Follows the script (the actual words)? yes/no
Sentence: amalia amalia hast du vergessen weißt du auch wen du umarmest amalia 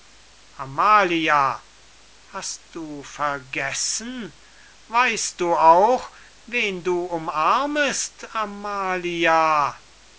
no